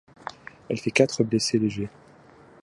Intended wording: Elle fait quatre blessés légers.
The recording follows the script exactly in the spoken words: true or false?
true